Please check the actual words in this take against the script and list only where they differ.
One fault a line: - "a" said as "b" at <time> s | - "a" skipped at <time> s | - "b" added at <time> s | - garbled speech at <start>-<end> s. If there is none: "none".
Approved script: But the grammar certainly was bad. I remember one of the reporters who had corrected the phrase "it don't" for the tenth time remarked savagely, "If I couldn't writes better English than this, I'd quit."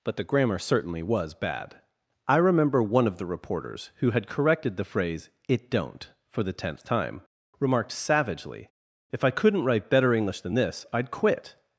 - "writes" said as "write" at 9.7 s